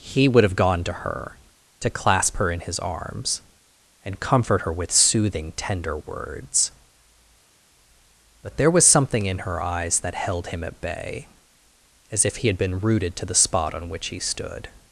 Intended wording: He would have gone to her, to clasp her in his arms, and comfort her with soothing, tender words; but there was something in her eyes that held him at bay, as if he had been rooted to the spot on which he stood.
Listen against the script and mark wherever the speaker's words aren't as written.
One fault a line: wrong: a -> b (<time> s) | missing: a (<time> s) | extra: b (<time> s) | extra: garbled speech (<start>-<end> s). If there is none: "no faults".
no faults